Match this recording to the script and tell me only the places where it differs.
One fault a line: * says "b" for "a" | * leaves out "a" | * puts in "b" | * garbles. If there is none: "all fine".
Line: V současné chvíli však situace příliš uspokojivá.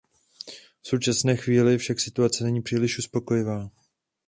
* puts in "není"